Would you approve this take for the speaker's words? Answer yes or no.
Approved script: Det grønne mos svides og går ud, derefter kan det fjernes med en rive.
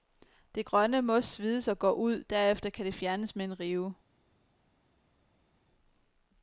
yes